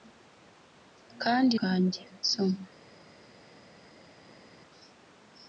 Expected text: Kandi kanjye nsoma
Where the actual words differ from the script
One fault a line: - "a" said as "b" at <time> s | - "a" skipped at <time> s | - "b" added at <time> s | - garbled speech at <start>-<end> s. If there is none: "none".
none